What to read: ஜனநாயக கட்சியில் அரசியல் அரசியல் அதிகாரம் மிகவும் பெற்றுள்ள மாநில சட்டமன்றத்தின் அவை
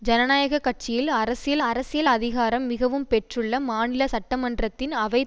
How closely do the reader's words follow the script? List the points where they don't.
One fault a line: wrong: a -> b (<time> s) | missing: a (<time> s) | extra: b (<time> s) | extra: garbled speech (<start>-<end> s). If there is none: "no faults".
no faults